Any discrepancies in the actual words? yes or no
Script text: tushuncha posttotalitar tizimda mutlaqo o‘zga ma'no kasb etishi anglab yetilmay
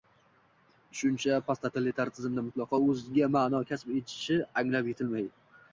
no